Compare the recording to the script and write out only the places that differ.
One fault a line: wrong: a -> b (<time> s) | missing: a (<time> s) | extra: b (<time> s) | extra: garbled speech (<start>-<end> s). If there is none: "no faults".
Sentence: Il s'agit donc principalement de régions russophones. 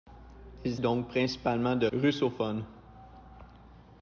missing: s'agit (0.8 s)
missing: régions (1.9 s)